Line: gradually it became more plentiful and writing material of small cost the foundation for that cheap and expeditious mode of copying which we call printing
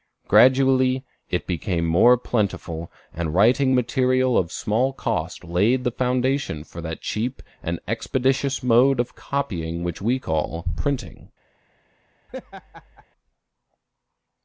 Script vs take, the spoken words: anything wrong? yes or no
yes